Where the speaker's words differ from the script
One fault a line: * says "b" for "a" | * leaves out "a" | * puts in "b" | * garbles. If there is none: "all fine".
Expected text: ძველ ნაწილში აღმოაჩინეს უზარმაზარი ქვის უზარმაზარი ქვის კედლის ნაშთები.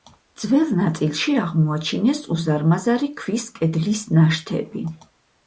* leaves out "უზარმაზარი ქვის"